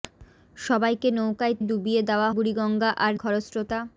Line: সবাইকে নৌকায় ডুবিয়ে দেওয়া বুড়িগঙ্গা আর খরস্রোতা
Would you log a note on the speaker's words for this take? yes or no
no